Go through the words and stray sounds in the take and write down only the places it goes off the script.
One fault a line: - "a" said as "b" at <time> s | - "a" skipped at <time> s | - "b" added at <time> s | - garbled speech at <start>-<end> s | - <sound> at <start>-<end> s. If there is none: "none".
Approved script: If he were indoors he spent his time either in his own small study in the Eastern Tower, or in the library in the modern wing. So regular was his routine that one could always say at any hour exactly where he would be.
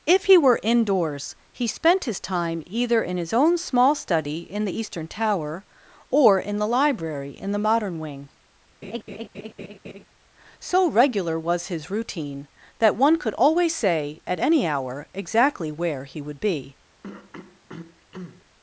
- laugh at 8.8-10.1 s
- throat clearing at 17.0-18.5 s